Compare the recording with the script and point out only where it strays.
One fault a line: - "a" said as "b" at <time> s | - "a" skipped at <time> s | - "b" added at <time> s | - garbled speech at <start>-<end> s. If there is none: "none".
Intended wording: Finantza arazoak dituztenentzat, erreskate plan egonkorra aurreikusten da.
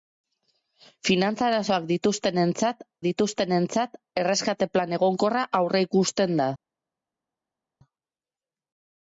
- "dituztenentzat" added at 3.1 s